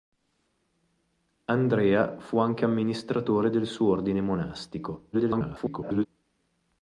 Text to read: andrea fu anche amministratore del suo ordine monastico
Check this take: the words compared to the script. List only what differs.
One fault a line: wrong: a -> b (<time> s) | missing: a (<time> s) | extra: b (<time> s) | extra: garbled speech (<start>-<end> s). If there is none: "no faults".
extra: garbled speech (5.1-6.1 s)